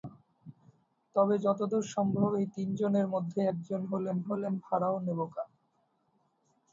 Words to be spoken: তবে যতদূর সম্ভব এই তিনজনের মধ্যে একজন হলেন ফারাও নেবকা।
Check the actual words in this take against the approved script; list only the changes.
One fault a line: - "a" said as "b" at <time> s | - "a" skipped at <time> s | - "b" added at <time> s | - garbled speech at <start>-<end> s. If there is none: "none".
- "হলেন" added at 4.3 s